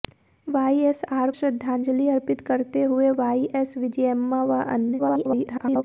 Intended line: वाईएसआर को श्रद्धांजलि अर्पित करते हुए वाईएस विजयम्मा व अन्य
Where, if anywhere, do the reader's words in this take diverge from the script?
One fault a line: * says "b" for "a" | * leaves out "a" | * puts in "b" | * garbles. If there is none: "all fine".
* leaves out "को"
* garbles